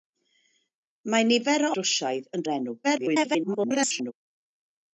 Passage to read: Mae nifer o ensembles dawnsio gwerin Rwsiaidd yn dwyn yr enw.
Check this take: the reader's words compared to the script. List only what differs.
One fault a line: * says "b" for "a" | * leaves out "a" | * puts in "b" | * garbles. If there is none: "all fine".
* leaves out "ensembles dawnsio gwerin"
* leaves out "dwyn"
* garbles